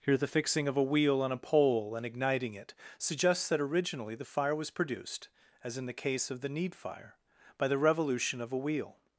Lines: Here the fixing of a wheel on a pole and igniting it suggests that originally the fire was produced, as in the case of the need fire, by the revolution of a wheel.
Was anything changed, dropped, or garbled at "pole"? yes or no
no